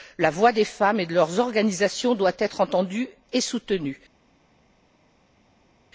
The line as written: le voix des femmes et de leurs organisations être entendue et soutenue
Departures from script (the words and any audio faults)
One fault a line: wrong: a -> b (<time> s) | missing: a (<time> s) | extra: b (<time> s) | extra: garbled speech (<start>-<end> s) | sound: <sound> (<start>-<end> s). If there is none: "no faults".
wrong: le -> la (0.2 s)
extra: doit (2.1 s)